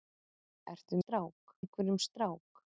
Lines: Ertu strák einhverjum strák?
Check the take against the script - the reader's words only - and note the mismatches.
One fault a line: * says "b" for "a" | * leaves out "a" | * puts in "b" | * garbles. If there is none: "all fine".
all fine